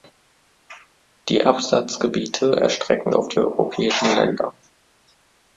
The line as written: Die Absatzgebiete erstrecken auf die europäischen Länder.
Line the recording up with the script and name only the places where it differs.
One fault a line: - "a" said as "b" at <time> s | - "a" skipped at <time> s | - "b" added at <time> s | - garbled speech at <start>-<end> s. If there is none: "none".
none